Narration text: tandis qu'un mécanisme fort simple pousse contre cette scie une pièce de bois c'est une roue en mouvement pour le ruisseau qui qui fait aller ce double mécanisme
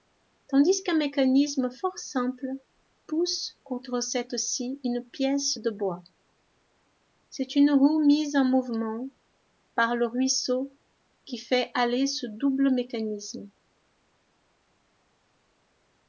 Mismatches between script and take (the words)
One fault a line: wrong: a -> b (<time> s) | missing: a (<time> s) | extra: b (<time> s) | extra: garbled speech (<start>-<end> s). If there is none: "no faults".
extra: mise (8.0 s)
wrong: pour -> par (9.7 s)
missing: qui (11.4 s)